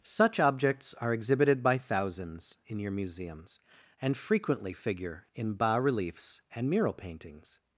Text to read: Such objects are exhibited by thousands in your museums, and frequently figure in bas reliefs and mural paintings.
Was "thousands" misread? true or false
false